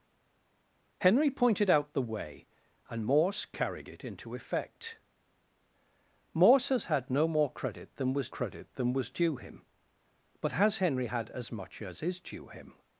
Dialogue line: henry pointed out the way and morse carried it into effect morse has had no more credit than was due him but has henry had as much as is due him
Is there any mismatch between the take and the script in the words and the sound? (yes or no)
yes